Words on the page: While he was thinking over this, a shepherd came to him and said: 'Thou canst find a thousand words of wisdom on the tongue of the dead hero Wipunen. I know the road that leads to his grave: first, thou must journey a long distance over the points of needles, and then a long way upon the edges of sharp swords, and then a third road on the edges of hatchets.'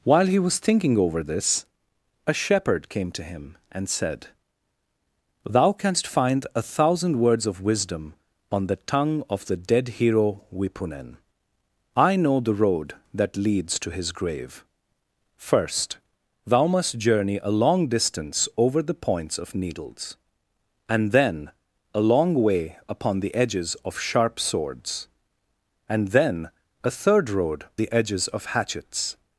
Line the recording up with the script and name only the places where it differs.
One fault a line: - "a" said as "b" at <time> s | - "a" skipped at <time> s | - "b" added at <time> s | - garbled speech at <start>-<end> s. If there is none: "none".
- "on" skipped at 27.6 s